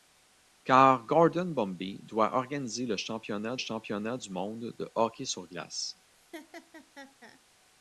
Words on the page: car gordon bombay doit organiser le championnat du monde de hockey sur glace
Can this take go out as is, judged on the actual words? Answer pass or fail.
fail